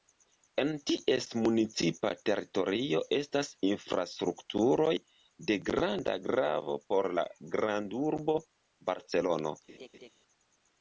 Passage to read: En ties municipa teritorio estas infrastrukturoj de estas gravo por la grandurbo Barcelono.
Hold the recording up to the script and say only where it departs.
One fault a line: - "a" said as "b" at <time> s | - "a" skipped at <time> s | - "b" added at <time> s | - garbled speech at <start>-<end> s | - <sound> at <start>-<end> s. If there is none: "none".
- "estas" said as "granda" at 5.7 s
- laugh at 9.7-10.1 s